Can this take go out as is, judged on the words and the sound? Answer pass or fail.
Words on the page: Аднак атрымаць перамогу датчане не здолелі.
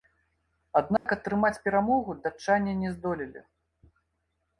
fail